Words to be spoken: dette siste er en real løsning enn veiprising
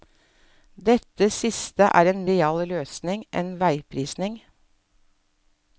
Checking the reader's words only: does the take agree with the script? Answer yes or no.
yes